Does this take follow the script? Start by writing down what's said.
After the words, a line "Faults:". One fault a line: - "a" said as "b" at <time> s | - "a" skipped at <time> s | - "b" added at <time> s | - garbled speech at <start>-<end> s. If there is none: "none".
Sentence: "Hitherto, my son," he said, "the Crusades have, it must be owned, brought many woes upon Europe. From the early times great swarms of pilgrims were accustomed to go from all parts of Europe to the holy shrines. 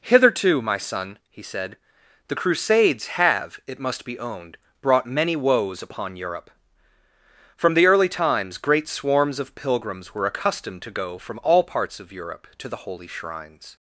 "Hitherto, my son," he said, "the Crusades have, it must be owned, brought many woes upon Europe. From the early times great swarms of pilgrims were accustomed to go from all parts of Europe to the holy shrines.
Faults:
none